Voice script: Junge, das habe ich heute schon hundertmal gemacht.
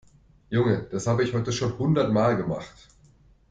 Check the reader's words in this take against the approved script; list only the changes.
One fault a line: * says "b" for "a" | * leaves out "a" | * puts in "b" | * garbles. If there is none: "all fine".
all fine